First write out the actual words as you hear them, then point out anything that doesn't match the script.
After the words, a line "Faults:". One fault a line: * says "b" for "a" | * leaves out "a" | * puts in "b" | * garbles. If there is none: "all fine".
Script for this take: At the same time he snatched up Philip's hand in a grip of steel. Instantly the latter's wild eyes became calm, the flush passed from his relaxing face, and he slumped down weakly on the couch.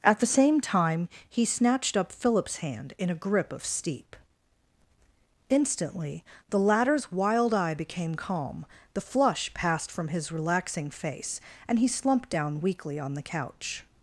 At the same time he snatched up Philip's hand in a grip of steep. Instantly the latter's wild eye became calm, the flush passed from his relaxing face, and he slumped down weakly on the couch.
Faults:
* says "steep" for "steel"
* says "eye" for "eyes"